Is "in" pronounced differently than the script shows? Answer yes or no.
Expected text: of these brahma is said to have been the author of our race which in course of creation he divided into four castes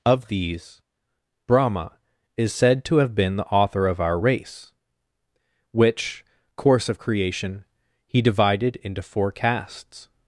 yes